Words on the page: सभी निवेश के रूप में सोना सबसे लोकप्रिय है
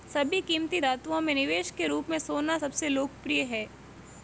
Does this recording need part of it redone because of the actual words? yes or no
yes